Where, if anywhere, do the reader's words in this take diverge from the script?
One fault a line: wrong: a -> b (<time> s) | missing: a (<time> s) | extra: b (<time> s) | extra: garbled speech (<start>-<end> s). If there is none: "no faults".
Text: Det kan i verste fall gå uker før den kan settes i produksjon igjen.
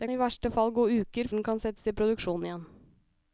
missing: kan (0.1 s)
missing: før (1.3 s)